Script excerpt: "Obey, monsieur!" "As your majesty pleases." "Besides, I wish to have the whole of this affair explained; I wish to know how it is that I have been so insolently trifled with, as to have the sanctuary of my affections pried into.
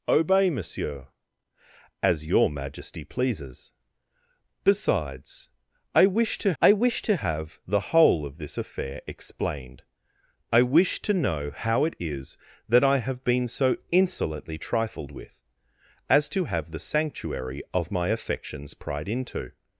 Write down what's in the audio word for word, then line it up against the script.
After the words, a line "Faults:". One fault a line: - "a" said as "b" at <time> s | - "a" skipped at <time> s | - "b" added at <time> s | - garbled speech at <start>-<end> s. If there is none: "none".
"Obey, monsieur!" "As your majesty pleases." "Besides, I wish to I wish to have the whole of this affair explained; I wish to know how it is that I have been so insolently trifled with, as to have the sanctuary of my affections pried into.
Faults:
- "I wish to" added at 6.6 s